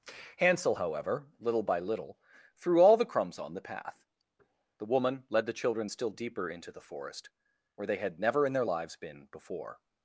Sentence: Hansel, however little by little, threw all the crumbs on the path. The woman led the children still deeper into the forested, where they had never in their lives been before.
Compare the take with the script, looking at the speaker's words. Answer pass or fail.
fail